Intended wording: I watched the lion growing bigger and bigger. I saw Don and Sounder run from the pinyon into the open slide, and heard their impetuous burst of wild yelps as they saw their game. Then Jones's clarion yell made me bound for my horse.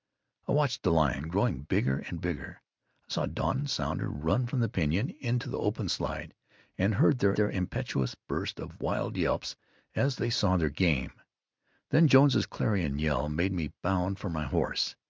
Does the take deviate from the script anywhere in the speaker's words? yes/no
yes